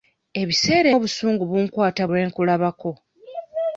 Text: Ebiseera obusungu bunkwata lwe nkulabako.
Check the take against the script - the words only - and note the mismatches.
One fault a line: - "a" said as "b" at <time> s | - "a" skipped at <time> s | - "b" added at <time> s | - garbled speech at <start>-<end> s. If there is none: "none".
none